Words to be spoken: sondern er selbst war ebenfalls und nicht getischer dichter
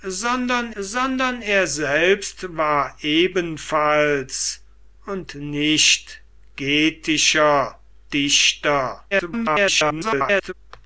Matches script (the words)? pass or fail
fail